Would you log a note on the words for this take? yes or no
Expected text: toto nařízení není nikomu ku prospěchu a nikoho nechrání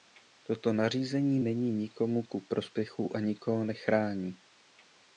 no